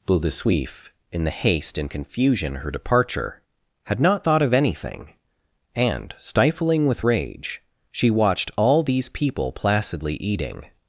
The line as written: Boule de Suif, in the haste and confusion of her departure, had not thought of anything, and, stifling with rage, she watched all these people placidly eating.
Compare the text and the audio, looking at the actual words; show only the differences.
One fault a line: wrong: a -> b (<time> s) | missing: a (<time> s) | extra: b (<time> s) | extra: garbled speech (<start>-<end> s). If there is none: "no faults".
missing: of (2.5 s)